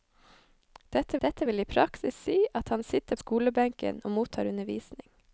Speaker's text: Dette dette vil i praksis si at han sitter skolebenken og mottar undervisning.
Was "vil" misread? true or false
false